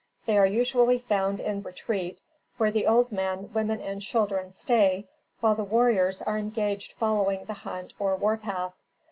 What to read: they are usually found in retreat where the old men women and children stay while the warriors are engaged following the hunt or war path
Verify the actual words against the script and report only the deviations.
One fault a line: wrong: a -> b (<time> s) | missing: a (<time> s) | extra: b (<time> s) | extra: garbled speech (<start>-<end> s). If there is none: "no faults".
no faults